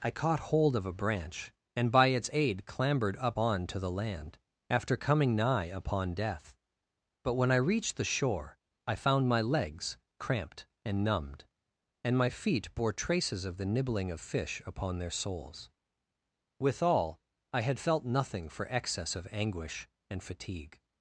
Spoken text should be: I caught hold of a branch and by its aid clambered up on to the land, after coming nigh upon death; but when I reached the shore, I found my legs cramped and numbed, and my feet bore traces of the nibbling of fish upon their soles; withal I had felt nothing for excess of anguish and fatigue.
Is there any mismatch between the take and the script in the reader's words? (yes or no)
no